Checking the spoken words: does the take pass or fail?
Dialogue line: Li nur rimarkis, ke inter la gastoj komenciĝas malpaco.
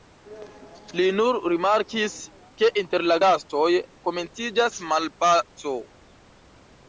pass